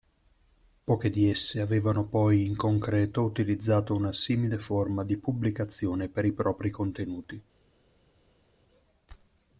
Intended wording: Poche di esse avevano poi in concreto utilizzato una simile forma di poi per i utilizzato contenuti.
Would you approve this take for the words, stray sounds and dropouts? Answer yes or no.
no